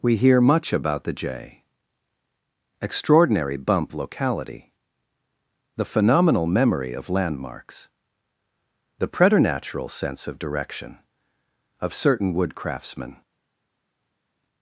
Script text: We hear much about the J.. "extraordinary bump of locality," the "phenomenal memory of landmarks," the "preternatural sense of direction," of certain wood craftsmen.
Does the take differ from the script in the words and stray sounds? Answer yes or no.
yes